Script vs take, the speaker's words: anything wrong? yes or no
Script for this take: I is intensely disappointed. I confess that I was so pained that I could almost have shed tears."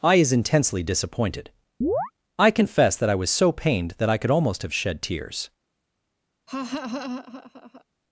no